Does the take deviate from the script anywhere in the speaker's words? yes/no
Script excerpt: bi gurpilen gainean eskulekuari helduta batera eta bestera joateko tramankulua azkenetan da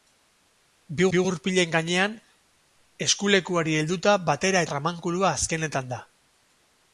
yes